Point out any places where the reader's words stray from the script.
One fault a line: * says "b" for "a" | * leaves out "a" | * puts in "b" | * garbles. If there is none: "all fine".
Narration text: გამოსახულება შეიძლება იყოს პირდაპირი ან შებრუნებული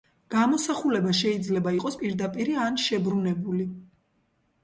all fine